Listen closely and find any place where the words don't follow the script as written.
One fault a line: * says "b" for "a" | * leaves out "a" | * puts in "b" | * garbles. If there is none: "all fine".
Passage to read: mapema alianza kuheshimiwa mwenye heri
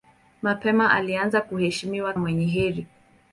all fine